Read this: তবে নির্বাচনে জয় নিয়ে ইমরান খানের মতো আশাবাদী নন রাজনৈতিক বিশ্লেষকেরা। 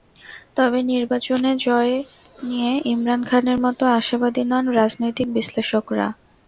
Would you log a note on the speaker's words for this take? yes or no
no